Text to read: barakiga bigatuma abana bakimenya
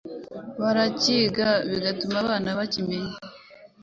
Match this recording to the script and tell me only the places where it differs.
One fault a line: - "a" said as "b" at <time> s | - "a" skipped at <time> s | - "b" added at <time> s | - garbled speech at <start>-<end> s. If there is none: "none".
none